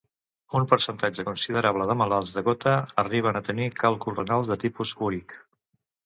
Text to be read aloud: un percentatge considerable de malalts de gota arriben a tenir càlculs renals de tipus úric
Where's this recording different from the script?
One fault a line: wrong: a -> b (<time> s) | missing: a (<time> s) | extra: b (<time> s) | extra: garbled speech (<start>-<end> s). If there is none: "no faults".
no faults